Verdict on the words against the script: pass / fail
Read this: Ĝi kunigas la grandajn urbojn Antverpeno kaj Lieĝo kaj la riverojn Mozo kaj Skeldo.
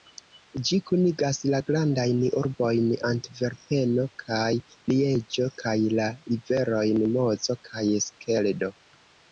pass